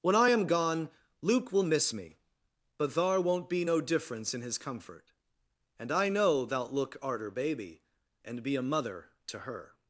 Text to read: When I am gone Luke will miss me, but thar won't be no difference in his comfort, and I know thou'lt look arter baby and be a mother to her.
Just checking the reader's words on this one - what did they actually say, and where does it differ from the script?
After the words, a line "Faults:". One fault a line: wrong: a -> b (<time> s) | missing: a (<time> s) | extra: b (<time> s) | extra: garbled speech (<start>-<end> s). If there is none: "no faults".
When I am gone Luke will miss me, but thar won't be no difference in his comfort, and I know thou'lt look arter baby and be a mother to her.
Faults:
no faults